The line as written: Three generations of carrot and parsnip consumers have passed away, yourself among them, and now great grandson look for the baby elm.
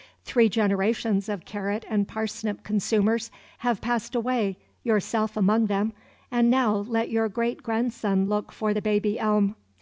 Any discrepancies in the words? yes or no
yes